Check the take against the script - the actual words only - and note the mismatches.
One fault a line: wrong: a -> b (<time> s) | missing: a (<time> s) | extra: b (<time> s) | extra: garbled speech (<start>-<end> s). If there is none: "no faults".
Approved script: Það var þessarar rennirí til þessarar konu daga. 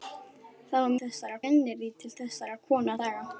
no faults